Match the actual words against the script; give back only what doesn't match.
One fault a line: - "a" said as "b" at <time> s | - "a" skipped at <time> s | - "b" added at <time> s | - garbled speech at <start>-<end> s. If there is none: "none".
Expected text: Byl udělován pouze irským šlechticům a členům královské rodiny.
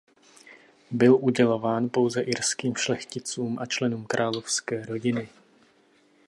none